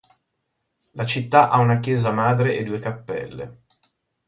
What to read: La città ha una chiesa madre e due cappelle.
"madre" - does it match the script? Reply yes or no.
yes